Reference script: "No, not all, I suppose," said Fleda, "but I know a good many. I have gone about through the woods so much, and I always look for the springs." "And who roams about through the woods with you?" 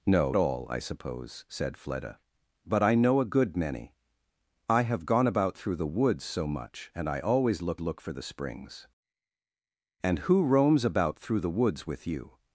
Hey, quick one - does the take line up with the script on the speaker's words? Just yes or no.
no